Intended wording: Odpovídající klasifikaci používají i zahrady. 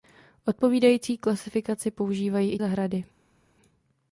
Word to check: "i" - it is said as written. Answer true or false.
true